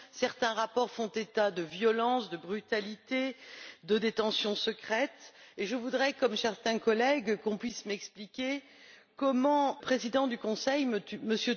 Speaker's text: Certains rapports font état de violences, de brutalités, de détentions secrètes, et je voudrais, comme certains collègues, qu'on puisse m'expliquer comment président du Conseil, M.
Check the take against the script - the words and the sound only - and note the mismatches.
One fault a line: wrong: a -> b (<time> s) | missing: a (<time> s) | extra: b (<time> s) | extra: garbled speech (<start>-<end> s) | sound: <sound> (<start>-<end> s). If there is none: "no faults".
no faults